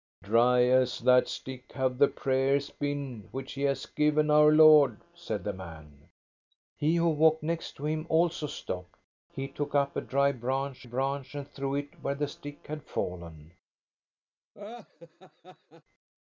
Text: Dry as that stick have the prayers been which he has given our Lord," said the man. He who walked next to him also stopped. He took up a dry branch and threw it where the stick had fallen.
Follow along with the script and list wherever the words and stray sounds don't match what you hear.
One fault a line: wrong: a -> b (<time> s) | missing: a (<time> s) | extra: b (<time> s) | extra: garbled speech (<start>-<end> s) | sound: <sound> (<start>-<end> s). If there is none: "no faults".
extra: branch (10.8 s)
sound: laugh (14.5-15.8 s)